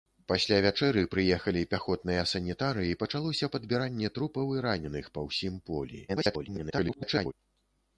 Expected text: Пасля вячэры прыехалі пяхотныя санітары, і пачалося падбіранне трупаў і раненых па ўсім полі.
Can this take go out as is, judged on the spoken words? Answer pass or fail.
fail